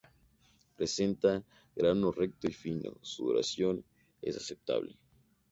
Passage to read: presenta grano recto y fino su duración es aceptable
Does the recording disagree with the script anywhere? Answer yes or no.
no